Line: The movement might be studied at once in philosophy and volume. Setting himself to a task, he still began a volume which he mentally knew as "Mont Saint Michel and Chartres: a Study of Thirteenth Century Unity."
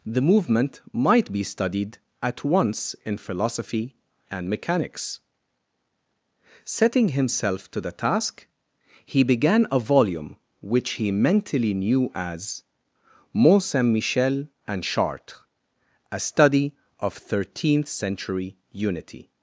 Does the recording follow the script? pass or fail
fail